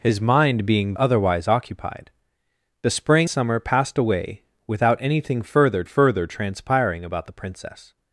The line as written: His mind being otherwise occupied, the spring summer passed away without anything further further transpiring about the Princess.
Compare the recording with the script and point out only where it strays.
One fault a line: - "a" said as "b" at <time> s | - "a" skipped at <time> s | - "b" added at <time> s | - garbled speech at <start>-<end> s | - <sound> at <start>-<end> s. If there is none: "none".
none